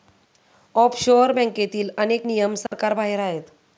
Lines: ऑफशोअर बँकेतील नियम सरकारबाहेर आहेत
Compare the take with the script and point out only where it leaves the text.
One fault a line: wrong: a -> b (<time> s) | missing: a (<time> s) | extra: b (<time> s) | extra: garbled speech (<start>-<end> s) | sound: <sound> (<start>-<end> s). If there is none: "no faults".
extra: अनेक (2.0 s)
sound: dropout (2.7-2.7 s)